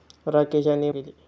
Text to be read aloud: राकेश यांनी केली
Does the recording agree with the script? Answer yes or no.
yes